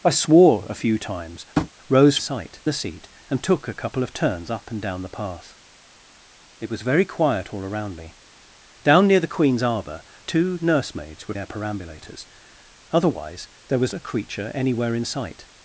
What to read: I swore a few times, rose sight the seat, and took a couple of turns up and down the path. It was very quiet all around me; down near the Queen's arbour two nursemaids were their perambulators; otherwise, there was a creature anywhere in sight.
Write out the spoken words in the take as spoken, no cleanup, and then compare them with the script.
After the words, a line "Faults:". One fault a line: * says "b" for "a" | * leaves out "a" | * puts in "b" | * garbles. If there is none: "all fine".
I swore a few times, rose sight the seat, and took a couple of turns up and down the path. It was very quiet all around me; down near the Queen's arbour two nursemaids were their perambulators; otherwise, there was a creature anywhere in sight.
Faults:
all fine